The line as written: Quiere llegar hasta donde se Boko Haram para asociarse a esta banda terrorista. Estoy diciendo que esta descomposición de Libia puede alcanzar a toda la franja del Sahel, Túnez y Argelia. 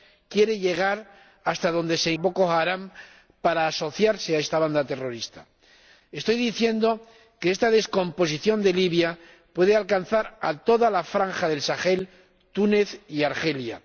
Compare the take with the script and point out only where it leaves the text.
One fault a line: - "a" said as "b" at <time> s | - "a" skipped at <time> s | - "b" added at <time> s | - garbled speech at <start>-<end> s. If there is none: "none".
none